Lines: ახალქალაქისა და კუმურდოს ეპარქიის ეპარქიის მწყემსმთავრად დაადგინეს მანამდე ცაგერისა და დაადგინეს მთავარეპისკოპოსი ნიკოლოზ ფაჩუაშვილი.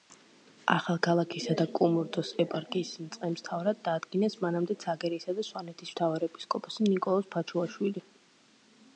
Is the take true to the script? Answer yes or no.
no